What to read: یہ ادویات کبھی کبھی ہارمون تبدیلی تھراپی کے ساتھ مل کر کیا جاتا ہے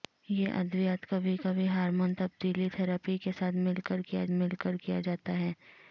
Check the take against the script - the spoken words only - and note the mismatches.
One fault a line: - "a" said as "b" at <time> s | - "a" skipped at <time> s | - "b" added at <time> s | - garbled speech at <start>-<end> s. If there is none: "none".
- "مل کر کیا" added at 4.3 s